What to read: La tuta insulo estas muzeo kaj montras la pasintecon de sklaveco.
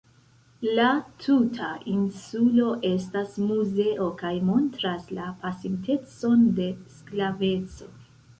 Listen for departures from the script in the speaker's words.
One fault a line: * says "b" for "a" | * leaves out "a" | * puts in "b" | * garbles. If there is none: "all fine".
all fine